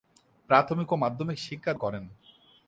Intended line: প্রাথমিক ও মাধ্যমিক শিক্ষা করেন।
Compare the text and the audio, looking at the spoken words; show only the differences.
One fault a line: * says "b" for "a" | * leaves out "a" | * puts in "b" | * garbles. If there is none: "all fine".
all fine